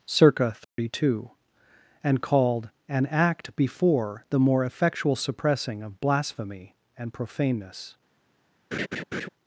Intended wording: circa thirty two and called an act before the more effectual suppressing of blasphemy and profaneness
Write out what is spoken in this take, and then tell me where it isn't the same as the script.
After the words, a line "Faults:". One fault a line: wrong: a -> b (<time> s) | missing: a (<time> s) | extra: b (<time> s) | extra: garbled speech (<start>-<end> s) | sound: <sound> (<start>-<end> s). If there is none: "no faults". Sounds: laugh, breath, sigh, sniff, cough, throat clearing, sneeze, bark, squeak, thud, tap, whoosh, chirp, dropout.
circa thirty two and called an act before the more effectual suppressing of blasphemy and profaneness
Faults:
sound: dropout (0.6-0.8 s)
sound: laugh (8.7-9.3 s)